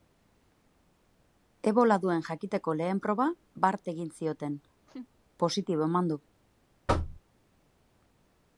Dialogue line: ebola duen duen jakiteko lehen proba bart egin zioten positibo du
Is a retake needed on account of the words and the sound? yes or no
yes